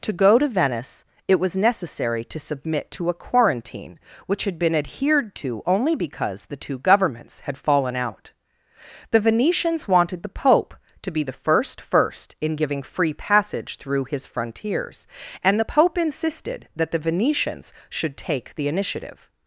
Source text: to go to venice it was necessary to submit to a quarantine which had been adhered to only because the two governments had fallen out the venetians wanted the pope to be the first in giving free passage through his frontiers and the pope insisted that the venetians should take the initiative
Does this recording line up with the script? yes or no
no